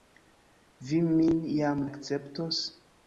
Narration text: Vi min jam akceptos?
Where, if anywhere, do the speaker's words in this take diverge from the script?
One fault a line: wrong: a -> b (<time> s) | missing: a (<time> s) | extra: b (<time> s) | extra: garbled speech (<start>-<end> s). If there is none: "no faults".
no faults